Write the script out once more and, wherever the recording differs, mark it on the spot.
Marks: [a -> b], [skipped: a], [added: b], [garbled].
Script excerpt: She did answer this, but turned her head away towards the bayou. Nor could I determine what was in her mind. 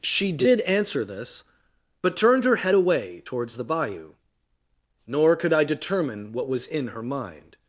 She did answer this, but turned her head away towards the bayou. Nor could I determine what was in her mind.